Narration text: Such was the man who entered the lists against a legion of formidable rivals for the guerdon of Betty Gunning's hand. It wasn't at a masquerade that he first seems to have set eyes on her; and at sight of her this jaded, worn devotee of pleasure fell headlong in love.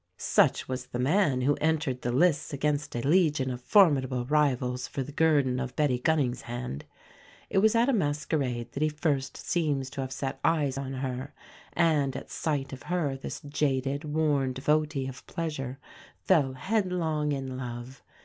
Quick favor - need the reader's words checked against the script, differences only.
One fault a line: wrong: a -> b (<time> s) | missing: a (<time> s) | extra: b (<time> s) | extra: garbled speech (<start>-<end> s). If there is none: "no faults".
wrong: wasn't -> was (7.6 s)